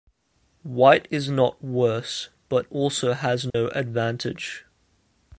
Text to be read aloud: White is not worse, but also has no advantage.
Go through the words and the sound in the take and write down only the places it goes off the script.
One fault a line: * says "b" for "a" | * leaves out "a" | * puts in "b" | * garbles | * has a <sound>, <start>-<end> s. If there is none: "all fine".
* has a dropout, 3.5-3.5 s